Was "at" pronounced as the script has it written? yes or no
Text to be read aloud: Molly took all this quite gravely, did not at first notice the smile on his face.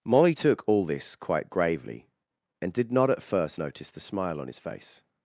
yes